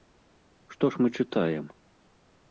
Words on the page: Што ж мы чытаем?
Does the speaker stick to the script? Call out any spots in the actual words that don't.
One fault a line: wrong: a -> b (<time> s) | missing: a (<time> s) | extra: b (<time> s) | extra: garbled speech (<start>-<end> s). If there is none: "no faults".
no faults